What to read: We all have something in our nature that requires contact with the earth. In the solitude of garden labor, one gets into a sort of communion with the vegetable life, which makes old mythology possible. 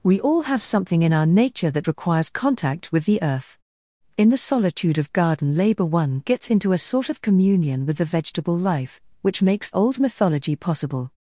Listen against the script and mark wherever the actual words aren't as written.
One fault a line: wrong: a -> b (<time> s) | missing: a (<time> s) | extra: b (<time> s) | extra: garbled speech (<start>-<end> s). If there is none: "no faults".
no faults